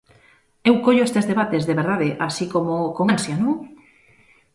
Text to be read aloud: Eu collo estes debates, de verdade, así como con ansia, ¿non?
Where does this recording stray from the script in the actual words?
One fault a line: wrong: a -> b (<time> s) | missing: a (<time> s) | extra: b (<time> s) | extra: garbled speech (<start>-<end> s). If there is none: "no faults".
no faults